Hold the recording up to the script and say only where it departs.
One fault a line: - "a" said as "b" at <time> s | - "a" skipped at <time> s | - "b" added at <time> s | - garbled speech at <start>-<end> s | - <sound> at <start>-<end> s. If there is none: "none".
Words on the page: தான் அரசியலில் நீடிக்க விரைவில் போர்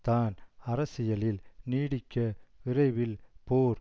none